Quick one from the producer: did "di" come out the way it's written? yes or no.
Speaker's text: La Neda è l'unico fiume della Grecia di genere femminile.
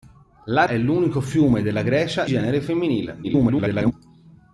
no